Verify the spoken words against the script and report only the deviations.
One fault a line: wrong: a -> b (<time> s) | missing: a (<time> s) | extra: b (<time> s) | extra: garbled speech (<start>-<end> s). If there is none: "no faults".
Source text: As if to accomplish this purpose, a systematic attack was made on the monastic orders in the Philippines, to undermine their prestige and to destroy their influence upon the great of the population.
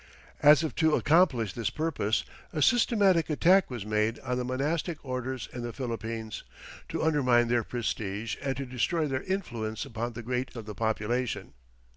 no faults